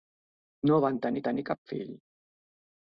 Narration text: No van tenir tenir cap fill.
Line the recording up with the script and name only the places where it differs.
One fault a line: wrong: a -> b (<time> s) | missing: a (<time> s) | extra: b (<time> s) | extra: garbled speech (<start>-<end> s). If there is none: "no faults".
no faults